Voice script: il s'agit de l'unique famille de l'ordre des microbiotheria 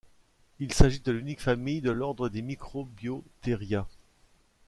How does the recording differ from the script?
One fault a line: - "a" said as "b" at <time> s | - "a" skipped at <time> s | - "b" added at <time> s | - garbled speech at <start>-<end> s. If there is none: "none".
none